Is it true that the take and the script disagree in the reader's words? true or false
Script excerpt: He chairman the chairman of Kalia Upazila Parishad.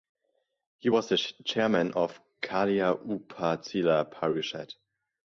true